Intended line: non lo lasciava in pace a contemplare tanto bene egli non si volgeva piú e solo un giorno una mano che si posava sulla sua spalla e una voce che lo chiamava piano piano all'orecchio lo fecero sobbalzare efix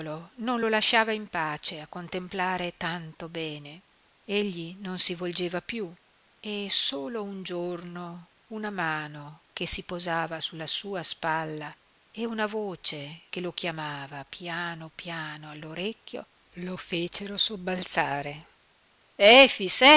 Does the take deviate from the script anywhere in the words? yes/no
no